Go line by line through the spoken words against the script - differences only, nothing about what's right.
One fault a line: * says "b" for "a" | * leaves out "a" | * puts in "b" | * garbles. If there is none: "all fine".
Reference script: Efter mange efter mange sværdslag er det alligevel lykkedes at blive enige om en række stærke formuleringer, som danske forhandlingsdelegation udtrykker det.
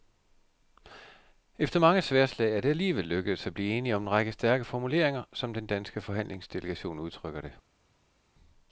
* leaves out "efter mange"
* puts in "den"